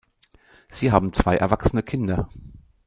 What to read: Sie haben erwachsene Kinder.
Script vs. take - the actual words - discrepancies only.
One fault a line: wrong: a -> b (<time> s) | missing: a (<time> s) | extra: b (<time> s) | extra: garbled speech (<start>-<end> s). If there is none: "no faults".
extra: zwei (1.1 s)